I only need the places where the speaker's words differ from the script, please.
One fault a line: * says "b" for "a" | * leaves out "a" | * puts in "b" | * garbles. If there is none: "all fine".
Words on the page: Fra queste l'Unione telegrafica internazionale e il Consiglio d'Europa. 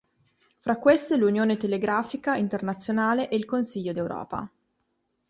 all fine